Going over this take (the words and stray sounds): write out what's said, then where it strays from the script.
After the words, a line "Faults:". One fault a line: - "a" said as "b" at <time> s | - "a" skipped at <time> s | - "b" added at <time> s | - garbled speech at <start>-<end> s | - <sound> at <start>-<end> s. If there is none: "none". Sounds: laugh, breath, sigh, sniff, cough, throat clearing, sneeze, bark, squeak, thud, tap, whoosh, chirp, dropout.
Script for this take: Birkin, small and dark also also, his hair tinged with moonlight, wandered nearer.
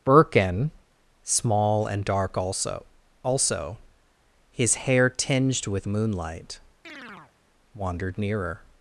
Birkin, small and dark also also, his hair tinged with moonlight, wandered nearer.
Faults:
- chirp at 6.8-7.3 s